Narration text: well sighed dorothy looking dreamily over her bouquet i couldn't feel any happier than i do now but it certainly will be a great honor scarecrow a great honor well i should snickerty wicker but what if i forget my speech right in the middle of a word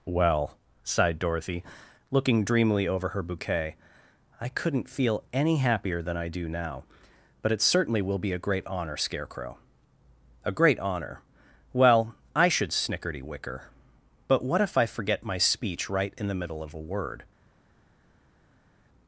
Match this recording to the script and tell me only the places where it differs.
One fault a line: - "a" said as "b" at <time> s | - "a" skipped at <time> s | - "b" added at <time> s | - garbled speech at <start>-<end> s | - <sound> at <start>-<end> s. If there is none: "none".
none